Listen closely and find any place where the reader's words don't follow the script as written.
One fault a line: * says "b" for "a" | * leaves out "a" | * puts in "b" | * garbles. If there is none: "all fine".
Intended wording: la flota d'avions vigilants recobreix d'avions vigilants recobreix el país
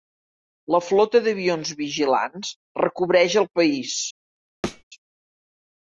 * leaves out "d'avions vigilants recobreix"